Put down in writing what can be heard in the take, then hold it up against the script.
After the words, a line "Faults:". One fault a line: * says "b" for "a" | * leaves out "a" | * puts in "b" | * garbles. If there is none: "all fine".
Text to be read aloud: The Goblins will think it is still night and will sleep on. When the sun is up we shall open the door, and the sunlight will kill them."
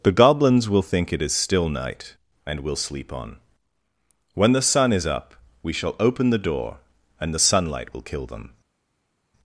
The Goblins will think it is still night and will sleep on. When the sun is up we shall open the door, and the sunlight will kill them."
Faults:
all fine